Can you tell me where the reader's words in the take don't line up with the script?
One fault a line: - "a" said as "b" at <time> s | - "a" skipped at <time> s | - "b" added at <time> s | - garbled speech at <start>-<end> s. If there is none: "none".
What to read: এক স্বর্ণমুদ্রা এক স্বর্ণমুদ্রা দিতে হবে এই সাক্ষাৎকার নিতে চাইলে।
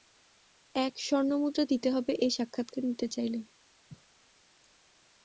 - "এক স্বর্ণমুদ্রা" skipped at 1.6 s